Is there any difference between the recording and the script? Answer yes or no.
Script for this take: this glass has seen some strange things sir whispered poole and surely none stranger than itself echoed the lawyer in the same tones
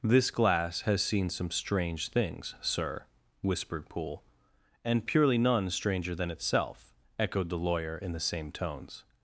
yes